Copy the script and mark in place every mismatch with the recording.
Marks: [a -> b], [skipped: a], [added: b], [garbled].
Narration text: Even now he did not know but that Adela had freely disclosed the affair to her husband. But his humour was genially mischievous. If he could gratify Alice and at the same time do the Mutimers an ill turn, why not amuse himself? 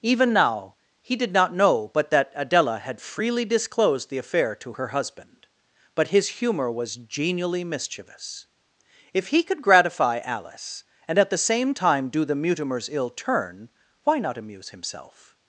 Even now he did not know but that Adela had freely disclosed the affair to her husband. But his humour was genially mischievous. If he could gratify Alice and at the same time do the Mutimers [skipped: an] ill turn, why not amuse himself?